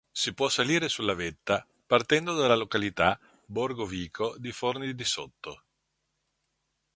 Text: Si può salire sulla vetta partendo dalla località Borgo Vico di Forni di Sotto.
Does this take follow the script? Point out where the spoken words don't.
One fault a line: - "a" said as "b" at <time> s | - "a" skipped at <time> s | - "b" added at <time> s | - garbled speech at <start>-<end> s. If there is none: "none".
none